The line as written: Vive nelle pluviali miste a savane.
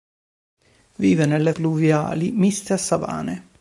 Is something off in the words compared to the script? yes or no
no